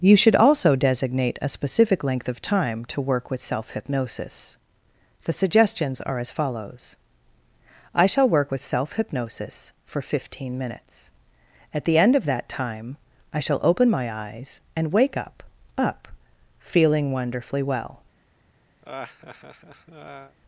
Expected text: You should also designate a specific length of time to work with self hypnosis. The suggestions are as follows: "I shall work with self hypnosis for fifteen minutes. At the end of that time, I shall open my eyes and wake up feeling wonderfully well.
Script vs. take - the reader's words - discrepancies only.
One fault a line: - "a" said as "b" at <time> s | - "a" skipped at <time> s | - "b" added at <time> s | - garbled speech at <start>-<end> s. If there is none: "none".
- "up" added at 15.8 s